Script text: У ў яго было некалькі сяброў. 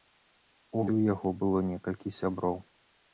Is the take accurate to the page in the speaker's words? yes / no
yes